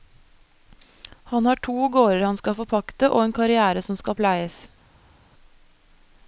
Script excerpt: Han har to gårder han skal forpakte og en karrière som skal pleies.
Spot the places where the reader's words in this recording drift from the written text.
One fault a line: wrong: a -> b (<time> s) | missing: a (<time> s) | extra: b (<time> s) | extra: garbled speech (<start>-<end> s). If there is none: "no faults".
no faults